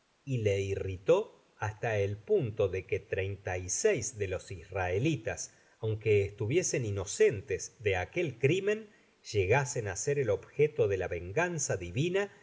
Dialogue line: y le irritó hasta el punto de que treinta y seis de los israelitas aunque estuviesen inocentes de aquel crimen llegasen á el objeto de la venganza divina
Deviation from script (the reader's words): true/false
true